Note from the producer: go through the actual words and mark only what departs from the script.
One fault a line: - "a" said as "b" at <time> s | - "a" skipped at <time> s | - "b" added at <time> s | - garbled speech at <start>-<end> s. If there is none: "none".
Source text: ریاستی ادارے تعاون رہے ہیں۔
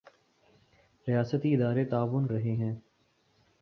none